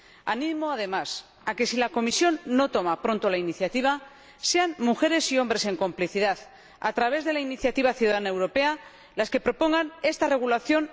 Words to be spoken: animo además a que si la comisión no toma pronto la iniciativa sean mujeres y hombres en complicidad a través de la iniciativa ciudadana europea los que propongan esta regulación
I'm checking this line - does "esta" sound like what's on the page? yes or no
yes